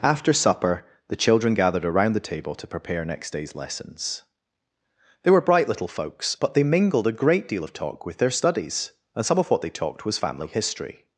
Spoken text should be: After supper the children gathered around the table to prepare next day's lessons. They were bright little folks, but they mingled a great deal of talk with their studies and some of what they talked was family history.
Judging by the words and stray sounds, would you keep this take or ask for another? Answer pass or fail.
pass